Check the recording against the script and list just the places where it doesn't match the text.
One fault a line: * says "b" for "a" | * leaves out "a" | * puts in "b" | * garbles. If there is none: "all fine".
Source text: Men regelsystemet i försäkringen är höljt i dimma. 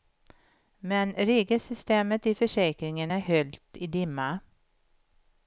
all fine